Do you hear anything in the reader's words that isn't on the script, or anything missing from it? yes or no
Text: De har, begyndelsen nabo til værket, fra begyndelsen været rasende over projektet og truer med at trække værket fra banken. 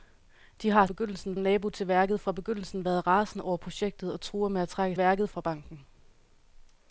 no